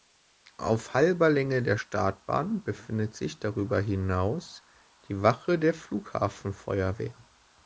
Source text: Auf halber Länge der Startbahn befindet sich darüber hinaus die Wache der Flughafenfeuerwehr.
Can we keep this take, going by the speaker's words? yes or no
yes